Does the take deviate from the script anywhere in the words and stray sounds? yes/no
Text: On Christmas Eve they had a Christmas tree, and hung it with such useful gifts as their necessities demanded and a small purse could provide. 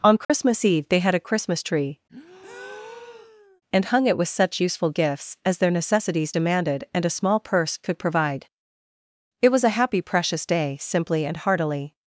yes